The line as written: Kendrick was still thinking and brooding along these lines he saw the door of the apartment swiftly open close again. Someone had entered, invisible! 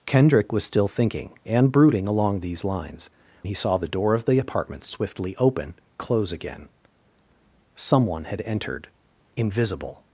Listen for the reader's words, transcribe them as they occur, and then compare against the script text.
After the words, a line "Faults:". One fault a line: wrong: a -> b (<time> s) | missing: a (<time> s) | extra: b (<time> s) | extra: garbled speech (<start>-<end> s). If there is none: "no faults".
Kendrick was still thinking and brooding along these lines he saw the door of the apartment swiftly open close again. Someone had entered, invisible!
Faults:
no faults